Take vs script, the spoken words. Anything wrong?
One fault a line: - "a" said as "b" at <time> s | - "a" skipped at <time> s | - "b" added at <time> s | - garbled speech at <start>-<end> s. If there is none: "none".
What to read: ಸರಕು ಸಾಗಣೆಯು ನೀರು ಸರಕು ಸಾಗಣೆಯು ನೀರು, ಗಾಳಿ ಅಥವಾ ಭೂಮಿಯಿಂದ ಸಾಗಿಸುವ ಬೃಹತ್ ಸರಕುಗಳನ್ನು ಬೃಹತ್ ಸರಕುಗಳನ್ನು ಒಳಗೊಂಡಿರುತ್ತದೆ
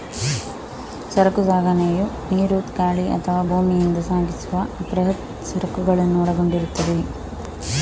- "ಸರಕು ಸಾಗಣೆಯು ನೀರು" skipped at 2.6 s
- "ಬೃಹತ್ ಸರಕುಗಳನ್ನು" skipped at 6.2 s